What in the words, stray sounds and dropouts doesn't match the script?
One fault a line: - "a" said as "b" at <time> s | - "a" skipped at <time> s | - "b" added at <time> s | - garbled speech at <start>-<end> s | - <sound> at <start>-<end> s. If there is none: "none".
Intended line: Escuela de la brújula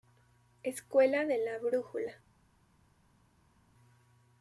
none